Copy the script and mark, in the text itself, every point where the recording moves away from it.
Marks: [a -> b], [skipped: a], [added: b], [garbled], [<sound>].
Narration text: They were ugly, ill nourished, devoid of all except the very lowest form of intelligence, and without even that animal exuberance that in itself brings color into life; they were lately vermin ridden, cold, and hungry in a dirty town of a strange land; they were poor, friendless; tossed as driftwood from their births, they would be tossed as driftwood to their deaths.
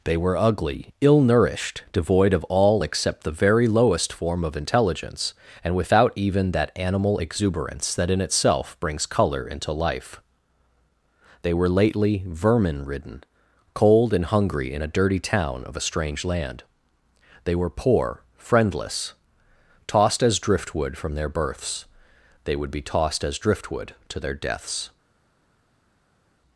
They were ugly, ill nourished, devoid of all except the very lowest form of intelligence, and without even that animal exuberance that in itself brings color into life; they were lately vermin ridden, cold, and hungry in a dirty town of a strange land; they were poor, friendless; tossed as driftwood from their births, they would be tossed as driftwood to their deaths.